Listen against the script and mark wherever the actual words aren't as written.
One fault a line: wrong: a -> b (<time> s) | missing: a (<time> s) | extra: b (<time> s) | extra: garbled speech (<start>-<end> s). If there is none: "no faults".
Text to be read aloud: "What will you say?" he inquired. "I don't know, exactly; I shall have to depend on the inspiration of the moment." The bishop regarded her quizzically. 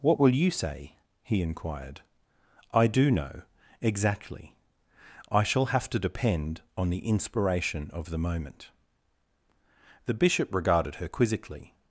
wrong: don't -> do (2.9 s)